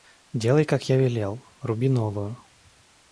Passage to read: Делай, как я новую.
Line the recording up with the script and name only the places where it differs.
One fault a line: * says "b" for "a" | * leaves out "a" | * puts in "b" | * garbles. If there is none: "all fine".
* puts in "велел руби"